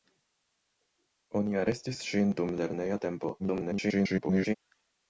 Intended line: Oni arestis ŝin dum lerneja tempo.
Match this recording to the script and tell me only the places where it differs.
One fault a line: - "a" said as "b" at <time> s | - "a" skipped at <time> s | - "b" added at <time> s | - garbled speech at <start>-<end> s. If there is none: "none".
- garbled speech at 3.4-4.5 s